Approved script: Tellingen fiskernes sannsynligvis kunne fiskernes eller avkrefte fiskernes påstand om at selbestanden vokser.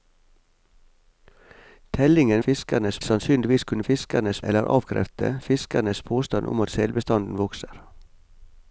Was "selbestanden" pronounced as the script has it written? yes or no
yes